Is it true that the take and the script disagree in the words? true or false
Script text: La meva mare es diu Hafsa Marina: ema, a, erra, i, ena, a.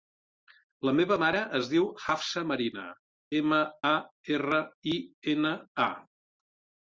false